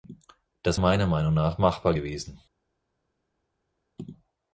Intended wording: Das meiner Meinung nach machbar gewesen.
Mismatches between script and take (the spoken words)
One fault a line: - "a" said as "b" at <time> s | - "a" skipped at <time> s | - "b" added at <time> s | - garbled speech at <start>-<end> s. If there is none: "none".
none